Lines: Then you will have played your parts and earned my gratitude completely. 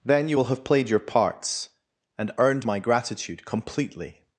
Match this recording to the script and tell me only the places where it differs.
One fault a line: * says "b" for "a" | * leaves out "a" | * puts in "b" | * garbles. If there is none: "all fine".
all fine